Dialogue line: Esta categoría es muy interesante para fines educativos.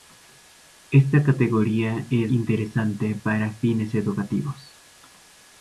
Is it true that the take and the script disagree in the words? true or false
true